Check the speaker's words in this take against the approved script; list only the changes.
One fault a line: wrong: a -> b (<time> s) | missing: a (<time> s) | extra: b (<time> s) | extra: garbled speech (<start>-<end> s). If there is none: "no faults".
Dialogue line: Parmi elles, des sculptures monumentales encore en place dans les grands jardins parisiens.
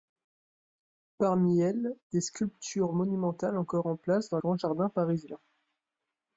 missing: les (4.4 s)